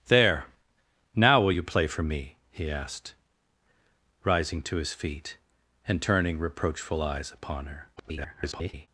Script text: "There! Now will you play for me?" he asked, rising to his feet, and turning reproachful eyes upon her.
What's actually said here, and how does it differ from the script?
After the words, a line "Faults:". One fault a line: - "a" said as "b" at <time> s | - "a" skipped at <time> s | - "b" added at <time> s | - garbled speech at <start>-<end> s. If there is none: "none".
"There! Now will you play for me?" he asked, rising to his feet, and turning reproachful eyes upon her. [garbled]
Faults:
- garbled speech at 8.0-8.9 s